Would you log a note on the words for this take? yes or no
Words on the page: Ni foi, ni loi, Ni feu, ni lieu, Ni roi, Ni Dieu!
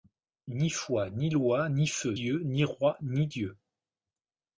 yes